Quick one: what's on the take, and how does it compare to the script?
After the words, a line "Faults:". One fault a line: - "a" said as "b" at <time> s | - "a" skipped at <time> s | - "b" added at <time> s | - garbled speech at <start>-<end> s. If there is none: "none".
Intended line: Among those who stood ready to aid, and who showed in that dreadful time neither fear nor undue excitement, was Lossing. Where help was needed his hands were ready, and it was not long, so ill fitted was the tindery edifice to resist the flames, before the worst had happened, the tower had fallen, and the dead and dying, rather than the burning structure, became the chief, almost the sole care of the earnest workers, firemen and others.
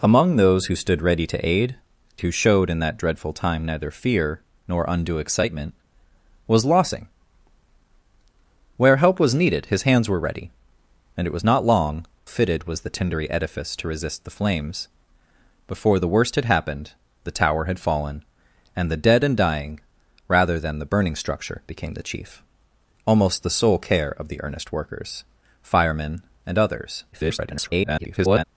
Among those who stood ready to aid, who showed in that dreadful time neither fear nor undue excitement, was Lossing. Where help was needed his hands were ready, and it was not long, fitted was the tindery edifice to resist the flames, before the worst had happened, the tower had fallen, and the dead and dying, rather than the burning structure, became the chief, almost the sole care of the earnest workers, firemen and others. [garbled]
Faults:
- "and" skipped at 1.8 s
- "so ill" skipped at 12.1 s
- garbled speech at 27.1-28.4 s